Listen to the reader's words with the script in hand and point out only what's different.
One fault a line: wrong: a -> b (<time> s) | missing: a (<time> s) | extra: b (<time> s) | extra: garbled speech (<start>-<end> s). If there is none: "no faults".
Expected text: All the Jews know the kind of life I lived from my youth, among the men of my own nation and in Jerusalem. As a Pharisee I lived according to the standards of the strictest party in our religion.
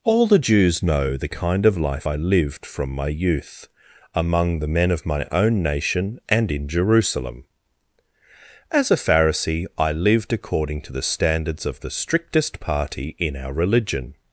no faults